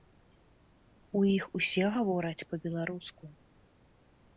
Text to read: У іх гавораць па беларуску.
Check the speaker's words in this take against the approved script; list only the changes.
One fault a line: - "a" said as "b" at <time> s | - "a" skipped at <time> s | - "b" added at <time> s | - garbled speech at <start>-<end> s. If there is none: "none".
- "усе" added at 1.6 s